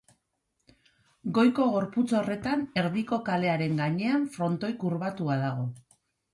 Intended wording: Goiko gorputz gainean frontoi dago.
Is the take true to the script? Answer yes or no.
no